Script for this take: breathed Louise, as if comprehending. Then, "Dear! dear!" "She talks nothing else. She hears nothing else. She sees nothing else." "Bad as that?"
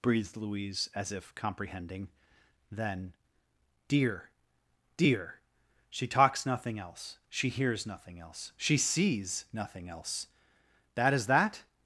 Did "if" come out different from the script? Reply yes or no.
no